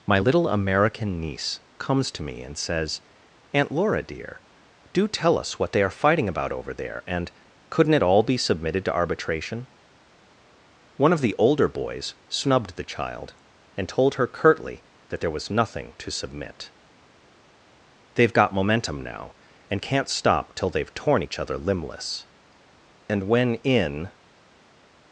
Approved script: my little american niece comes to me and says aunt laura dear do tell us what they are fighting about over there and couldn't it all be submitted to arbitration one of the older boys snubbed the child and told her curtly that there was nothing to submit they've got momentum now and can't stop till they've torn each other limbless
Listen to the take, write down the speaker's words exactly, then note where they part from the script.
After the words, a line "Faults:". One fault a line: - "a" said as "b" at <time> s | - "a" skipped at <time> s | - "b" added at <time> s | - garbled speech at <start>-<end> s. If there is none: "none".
my little american niece comes to me and says aunt laura dear do tell us what they are fighting about over there and couldn't it all be submitted to arbitration one of the older boys snubbed the child and told her curtly that there was nothing to submit they've got momentum now and can't stop till they've torn each other limbless and when in
Faults:
- "and when in" added at 23.1 s